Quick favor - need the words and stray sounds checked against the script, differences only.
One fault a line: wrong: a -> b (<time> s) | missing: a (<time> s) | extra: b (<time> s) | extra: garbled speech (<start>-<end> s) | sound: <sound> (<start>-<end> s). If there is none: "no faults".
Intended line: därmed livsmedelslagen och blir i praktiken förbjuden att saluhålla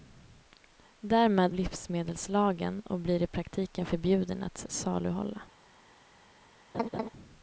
sound: laugh (6.7-7.1 s)